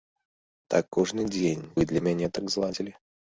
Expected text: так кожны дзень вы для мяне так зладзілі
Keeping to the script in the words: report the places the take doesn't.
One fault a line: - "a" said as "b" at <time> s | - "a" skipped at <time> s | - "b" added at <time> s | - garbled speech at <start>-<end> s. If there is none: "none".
none